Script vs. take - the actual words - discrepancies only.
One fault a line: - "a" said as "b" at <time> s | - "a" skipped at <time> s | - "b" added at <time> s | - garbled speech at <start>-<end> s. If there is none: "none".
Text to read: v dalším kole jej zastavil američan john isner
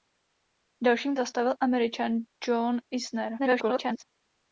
- "kole jej" skipped at 1.2 s
- garbled speech at 3.4-4.0 s